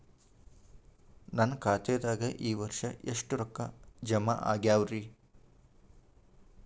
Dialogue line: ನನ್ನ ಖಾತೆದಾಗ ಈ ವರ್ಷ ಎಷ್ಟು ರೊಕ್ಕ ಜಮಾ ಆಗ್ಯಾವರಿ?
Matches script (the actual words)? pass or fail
pass